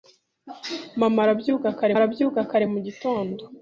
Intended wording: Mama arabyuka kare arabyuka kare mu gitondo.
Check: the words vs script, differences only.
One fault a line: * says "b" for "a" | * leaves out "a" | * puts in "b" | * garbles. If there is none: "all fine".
all fine